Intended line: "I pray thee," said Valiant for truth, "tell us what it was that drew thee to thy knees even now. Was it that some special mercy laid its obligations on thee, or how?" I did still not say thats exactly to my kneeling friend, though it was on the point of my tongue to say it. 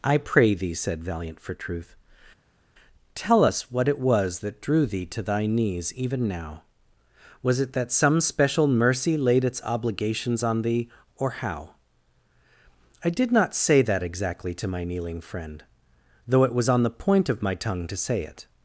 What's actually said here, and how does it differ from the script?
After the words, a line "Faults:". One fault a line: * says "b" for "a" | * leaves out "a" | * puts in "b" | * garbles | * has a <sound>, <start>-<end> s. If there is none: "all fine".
"I pray thee," said Valiant for truth, "tell us what it was that drew thee to thy knees even now. Was it that some special mercy laid its obligations on thee, or how?" I did not say that exactly to my kneeling friend, though it was on the point of my tongue to say it.
Faults:
* leaves out "still"
* says "that" for "thats"